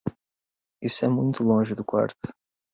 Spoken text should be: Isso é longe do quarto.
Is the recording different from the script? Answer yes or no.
yes